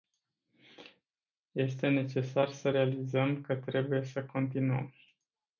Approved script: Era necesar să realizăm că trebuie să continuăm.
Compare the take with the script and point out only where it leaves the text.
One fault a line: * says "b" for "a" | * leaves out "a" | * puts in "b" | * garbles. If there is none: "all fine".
* says "Este" for "Era"